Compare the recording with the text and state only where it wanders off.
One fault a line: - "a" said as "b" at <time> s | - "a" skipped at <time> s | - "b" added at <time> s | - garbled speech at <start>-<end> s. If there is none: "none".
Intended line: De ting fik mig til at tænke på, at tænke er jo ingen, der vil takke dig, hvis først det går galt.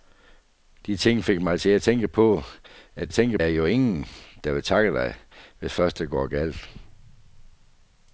none